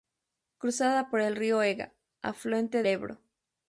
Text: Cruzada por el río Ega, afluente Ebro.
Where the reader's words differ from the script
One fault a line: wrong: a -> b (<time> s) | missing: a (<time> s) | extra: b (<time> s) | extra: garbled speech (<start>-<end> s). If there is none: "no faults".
no faults